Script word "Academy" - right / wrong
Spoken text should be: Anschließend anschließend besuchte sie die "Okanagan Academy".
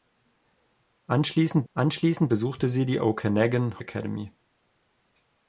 right